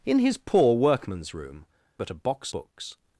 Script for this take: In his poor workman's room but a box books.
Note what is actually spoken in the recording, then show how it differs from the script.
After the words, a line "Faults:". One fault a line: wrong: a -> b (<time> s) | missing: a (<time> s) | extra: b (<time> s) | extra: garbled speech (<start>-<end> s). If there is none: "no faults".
In his poor workman's room but a box books.
Faults:
no faults